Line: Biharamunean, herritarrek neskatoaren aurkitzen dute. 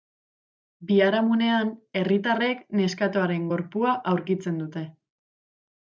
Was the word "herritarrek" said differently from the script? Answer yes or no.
no